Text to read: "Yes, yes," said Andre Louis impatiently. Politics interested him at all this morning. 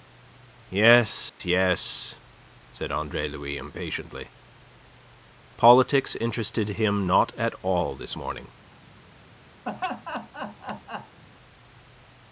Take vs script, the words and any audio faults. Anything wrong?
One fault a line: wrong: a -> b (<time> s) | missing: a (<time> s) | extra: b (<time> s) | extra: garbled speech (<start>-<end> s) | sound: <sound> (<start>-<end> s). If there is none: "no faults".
sound: dropout (1.3-1.4 s)
extra: not (7.0 s)
sound: laugh (9.6-11.2 s)